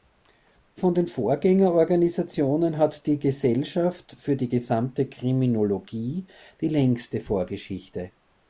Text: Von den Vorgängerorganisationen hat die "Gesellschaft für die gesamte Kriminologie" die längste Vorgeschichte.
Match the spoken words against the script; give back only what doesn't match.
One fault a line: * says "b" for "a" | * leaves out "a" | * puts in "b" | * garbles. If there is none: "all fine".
all fine